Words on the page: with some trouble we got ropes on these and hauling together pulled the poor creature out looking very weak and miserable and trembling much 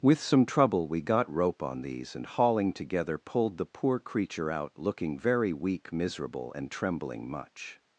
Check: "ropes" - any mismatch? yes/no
yes